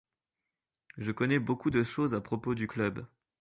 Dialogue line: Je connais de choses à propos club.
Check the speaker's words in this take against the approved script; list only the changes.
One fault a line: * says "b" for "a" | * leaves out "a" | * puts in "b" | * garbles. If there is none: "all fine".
* puts in "beaucoup"
* puts in "du"